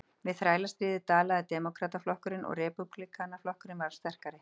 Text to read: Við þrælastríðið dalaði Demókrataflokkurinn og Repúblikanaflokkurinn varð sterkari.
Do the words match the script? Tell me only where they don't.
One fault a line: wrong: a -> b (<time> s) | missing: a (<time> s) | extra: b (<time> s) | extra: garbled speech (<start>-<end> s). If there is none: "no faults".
no faults